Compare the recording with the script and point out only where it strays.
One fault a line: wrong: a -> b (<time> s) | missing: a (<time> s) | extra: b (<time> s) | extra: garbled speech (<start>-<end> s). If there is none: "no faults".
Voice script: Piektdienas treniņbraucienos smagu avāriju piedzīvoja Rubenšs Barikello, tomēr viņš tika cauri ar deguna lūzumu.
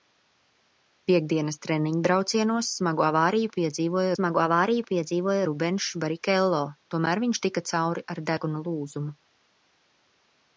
extra: smagu avāriju piedzīvoja (4.2 s)